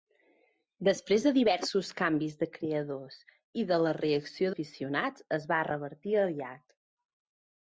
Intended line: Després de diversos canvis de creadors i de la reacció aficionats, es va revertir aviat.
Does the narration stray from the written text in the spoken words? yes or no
no